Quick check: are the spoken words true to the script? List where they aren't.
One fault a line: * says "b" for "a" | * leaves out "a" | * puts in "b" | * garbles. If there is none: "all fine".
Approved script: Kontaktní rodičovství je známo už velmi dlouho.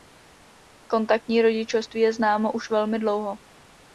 all fine